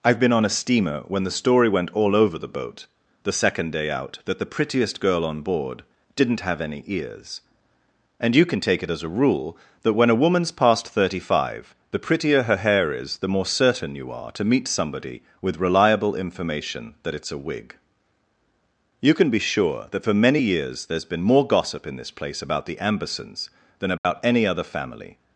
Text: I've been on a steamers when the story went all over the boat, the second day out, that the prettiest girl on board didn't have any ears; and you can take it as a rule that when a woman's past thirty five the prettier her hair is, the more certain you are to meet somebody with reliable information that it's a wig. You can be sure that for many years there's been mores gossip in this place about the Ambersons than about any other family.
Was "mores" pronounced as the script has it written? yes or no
no